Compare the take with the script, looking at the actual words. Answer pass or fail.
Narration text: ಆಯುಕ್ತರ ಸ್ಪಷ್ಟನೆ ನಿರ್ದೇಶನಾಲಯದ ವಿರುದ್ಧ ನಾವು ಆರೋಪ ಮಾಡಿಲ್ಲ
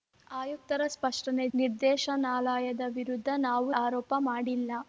pass